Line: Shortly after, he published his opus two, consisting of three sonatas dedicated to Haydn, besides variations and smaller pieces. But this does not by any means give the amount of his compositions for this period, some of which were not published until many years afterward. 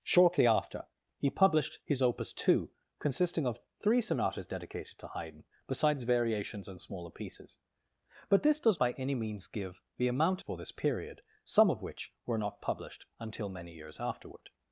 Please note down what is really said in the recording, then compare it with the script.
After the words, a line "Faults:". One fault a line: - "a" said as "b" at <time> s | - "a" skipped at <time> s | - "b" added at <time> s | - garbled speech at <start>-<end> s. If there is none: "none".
Shortly after, he published his opus two, consisting of three sonatas dedicated to Haydn, besides variations and smaller pieces. But this does by any means give the amount for this period, some of which were not published until many years afterward.
Faults:
- "not" skipped at 8.8 s
- "of his compositions" skipped at 10.4 s